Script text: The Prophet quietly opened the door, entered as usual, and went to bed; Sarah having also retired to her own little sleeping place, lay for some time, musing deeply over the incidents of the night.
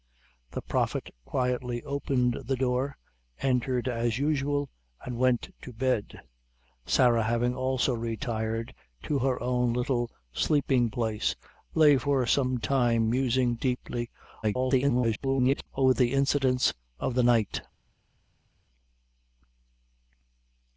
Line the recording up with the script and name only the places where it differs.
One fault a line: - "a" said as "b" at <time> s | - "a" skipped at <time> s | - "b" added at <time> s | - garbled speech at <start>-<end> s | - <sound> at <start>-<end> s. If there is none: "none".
- garbled speech at 14.4-15.7 s